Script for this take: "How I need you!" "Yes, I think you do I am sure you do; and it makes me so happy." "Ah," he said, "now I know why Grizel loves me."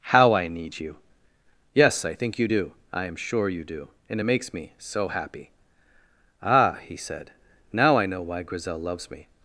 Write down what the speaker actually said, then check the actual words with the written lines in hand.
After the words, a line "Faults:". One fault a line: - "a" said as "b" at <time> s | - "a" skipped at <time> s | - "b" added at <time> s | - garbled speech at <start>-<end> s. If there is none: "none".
"How I need you!" "Yes, I think you do I am sure you do; and it makes me so happy." "Ah," he said, "now I know why Grizel loves me."
Faults:
none